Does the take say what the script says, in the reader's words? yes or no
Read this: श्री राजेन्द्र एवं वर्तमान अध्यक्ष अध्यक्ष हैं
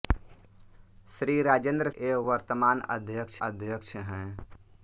yes